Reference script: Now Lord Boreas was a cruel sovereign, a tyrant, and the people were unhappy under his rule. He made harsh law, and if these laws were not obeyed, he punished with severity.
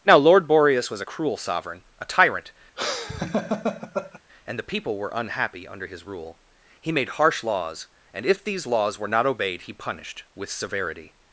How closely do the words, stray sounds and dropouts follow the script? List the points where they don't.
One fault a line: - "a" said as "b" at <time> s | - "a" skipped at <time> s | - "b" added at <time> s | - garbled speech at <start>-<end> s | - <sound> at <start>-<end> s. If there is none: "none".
- laugh at 2.8-4.2 s
- "law" said as "laws" at 7.4 s